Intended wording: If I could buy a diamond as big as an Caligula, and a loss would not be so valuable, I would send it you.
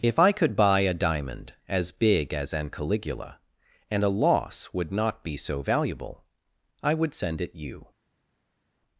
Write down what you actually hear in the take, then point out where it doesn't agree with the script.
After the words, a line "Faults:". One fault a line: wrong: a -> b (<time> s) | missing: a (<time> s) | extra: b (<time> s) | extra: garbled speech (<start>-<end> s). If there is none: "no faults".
If I could buy a diamond as big as an Caligula, and a loss would not be so valuable, I would send it you.
Faults:
no faults